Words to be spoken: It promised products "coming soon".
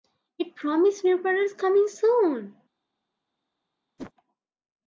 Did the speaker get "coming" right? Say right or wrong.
right